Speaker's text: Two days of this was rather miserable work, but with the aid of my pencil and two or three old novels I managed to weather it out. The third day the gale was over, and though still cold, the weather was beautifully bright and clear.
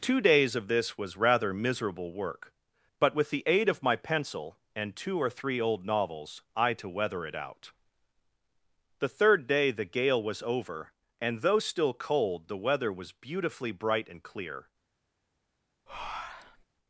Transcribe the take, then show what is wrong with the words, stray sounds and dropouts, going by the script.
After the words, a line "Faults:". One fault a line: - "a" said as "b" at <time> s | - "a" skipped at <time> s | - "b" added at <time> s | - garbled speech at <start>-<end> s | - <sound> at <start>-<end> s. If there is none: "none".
Two days of this was rather miserable work, but with the aid of my pencil and two or three old novels I to weather it out. The third day the gale was over, and though still cold, the weather was beautifully bright and clear.
Faults:
- "managed" skipped at 6.7 s
- breath at 15.9-16.6 s